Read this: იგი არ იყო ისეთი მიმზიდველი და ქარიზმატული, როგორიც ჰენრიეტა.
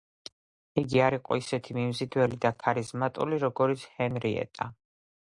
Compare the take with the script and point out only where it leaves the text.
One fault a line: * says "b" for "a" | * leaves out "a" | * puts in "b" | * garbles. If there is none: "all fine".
all fine